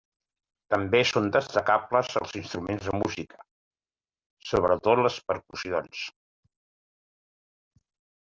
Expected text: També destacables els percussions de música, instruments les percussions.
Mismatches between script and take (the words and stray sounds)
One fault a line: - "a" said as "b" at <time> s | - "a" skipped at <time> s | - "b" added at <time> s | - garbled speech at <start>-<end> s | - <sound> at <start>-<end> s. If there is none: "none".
- "són" added at 1.1 s
- "percussions" said as "instruments" at 2.4 s
- "instruments" said as "sobretot" at 4.5 s